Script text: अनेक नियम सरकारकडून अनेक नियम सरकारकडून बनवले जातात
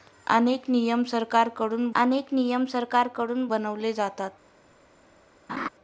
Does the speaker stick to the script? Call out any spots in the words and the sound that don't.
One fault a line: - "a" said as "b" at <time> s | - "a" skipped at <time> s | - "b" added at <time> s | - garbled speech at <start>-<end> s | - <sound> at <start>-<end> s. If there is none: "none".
- laugh at 5.5-5.7 s